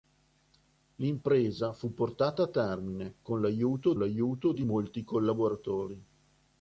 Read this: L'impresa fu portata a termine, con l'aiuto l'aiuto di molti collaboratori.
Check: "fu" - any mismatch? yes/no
no